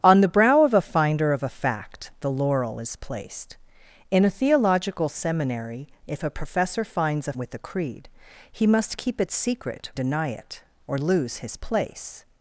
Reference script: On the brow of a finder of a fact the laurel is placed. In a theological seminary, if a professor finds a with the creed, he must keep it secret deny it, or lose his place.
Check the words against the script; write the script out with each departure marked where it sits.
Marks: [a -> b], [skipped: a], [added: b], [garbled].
On the brow of a finder of a fact the laurel is placed. In a theological seminary, if a professor finds a with the creed, he must keep it secret deny it, or lose his place.